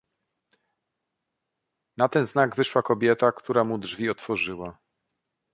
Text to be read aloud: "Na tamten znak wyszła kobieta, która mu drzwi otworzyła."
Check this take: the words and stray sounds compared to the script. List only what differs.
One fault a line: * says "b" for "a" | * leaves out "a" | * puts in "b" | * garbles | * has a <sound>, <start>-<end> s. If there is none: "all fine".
* says "ten" for "tamten"